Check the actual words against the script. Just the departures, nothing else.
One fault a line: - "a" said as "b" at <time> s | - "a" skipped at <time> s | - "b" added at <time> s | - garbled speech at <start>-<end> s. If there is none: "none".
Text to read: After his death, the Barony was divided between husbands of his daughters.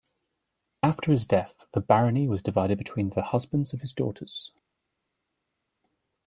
- "the" added at 3.1 s